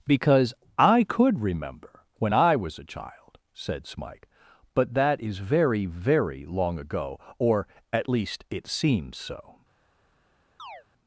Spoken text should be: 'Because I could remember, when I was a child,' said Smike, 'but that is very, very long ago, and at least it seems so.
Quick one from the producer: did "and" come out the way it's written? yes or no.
no